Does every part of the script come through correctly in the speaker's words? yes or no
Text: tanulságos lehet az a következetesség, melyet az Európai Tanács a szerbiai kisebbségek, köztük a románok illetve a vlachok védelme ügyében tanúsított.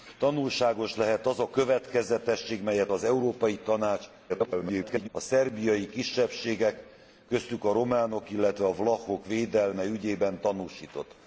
no